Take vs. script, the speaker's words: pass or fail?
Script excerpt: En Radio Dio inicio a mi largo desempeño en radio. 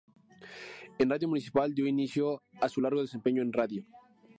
fail